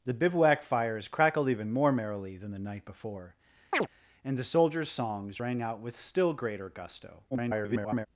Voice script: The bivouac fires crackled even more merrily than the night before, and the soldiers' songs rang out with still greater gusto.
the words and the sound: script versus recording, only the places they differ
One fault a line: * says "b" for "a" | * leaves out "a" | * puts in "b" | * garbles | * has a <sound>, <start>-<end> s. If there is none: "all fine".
* has a chirp, 3.7-3.9 s
* garbles